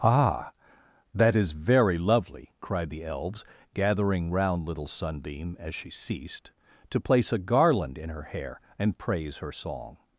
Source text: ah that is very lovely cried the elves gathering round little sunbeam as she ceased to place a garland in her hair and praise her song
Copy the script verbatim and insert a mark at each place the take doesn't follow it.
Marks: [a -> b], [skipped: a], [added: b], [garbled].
ah that is very lovely cried the elves gathering round little sunbeam as she ceased to place a garland in her hair and praise her song